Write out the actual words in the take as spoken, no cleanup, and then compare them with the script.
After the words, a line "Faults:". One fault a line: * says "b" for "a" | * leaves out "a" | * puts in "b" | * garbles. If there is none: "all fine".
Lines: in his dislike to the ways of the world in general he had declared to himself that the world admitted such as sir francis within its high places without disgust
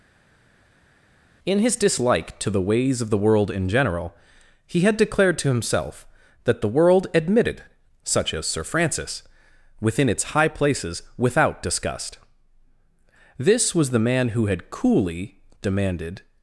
in his dislike to the ways of the world in general he had declared to himself that the world admitted such as sir francis within its high places without disgust this was the man who had coolly demanded
Faults:
* puts in "this was the man who had coolly demanded"